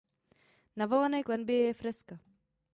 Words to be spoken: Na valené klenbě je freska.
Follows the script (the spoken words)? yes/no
yes